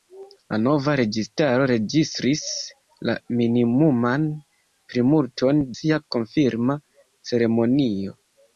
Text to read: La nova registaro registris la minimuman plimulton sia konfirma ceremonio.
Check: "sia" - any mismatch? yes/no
no